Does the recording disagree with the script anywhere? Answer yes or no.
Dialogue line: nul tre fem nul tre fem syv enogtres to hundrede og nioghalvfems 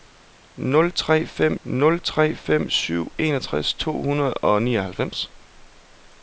no